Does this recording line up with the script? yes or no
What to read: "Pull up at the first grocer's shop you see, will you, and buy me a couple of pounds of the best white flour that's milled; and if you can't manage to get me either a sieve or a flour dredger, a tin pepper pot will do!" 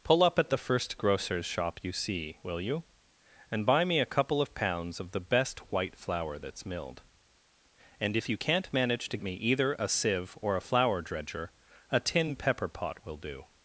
no